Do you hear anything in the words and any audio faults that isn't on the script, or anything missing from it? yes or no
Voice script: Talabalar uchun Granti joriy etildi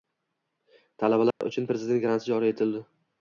yes